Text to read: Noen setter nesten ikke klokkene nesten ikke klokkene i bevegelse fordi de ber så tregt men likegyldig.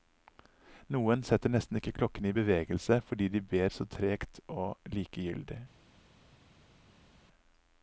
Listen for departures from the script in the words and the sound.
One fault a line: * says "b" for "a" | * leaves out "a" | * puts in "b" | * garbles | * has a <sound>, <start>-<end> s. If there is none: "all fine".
* leaves out "nesten ikke klokkene"
* says "og" for "men"